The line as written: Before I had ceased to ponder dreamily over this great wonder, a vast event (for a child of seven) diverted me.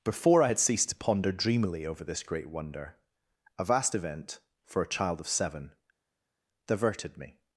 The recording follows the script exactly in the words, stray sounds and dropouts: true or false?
true